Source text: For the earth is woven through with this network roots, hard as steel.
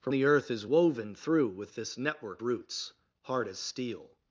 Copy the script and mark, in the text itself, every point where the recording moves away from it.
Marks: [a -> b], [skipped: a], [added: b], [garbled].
For the earth is woven through with this network roots, hard as steel.